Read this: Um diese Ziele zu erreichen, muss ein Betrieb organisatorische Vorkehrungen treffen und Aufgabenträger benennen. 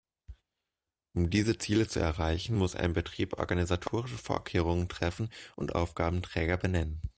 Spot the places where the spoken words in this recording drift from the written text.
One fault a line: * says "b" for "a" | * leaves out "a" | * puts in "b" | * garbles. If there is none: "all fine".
all fine